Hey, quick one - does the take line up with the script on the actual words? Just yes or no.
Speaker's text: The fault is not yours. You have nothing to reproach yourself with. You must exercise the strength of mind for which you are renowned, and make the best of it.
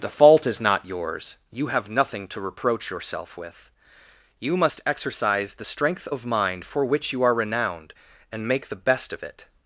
yes